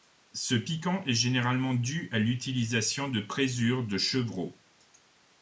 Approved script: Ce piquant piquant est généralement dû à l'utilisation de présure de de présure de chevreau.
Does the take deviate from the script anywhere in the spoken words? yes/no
yes